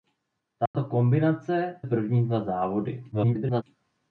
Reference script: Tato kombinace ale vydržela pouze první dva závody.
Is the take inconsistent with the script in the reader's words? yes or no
yes